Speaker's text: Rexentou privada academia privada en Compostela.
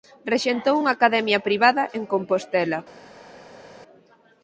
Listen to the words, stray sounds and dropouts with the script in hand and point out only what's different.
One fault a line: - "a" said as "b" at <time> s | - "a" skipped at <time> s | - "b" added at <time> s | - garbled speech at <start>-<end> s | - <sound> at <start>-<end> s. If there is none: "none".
- "privada" said as "unha" at 0.8 s